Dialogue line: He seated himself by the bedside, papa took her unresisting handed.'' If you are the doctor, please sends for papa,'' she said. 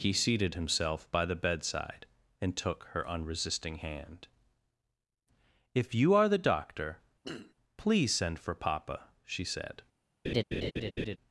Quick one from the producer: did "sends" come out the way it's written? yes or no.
no